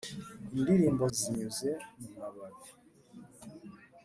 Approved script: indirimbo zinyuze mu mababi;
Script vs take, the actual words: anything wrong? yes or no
no